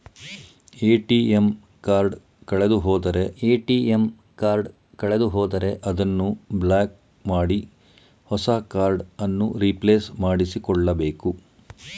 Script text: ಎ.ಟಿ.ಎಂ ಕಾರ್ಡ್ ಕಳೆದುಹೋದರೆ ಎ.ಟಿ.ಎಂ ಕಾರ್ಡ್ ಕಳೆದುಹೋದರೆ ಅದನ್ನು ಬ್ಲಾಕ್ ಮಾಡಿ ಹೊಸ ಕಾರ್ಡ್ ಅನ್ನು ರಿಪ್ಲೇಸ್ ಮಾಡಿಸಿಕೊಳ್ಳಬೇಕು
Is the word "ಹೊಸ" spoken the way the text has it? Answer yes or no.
yes